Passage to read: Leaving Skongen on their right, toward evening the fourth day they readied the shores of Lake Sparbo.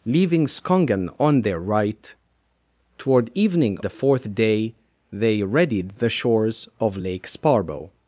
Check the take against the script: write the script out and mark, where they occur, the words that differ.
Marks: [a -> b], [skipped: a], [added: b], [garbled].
Leaving Skongen on their right, toward evening the fourth day they readied the shores of Lake Sparbo.